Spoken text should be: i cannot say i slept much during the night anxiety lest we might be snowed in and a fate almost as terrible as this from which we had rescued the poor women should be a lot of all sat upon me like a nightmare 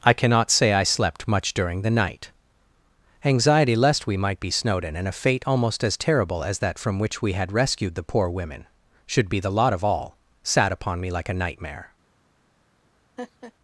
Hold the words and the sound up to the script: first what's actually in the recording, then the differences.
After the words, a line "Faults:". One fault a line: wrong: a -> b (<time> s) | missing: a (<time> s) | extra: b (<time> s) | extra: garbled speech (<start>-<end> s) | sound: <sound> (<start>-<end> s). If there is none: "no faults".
i cannot say i slept much during the night anxiety lest we might be snowed in and a fate almost as terrible as that from which we had rescued the poor women should be the lot of all sat upon me like a nightmare
Faults:
wrong: this -> that (6.6 s)
wrong: a -> the (9.4 s)
sound: laugh (13.2-13.5 s)